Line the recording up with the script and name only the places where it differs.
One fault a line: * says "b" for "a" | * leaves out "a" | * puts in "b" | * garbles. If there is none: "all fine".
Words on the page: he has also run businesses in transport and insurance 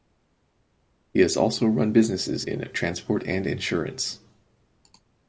all fine